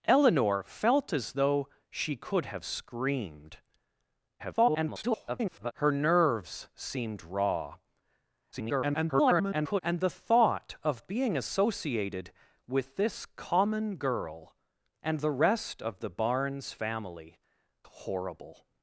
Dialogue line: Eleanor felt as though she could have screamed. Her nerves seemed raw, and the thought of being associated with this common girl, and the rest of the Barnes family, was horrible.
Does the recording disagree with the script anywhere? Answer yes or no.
yes